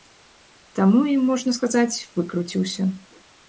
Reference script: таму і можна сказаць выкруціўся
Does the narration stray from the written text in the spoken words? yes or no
no